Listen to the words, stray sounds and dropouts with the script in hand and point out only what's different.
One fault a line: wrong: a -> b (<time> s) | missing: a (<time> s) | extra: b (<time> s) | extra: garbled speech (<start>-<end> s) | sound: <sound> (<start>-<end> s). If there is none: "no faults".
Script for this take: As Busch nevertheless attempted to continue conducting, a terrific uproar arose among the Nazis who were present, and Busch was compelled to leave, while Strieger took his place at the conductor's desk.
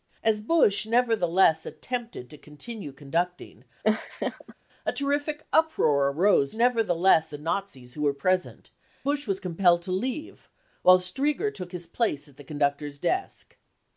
sound: laugh (3.8-4.5 s)
wrong: among -> nevertheless (6.5 s)
missing: and (8.7 s)